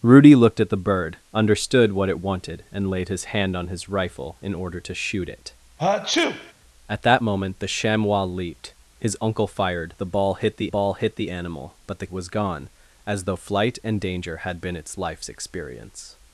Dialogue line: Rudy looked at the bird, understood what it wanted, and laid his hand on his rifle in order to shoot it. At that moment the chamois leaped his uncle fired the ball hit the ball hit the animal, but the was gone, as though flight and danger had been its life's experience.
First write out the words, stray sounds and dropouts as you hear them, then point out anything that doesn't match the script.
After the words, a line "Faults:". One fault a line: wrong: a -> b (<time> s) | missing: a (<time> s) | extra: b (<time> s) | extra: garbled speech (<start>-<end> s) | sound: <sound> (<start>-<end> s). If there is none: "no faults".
Rudy looked at the bird, understood what it wanted, and laid his hand on his rifle in order to shoot it. At that moment the chamois leaped his uncle fired the ball hit the ball hit the animal, but the was gone, as though flight and danger had been its life's experience.
Faults:
sound: sneeze (5.8-6.5 s)